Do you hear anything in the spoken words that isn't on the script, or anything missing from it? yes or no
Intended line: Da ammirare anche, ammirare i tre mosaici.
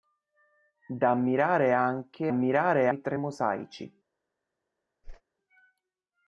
no